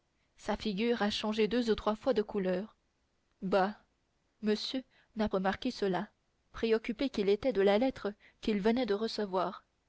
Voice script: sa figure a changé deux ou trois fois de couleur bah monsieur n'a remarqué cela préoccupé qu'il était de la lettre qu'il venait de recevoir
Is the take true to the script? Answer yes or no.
yes